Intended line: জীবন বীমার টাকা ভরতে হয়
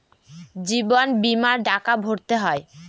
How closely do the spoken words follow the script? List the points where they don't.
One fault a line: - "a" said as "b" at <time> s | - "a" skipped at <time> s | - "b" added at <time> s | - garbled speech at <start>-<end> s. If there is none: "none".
none